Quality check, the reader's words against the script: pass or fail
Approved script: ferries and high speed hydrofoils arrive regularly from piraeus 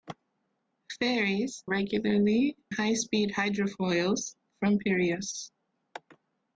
fail